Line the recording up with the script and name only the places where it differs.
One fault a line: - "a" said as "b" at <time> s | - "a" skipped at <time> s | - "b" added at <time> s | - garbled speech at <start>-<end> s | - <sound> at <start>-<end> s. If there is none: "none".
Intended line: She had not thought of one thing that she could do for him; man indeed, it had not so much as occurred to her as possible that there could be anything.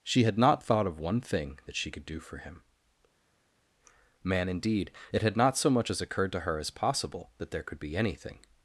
none